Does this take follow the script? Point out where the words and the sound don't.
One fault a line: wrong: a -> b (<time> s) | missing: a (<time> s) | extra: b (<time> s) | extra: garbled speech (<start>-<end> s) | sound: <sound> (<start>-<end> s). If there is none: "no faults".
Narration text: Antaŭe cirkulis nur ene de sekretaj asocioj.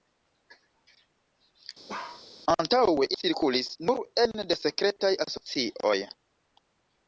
sound: bark (1.9-2.2 s)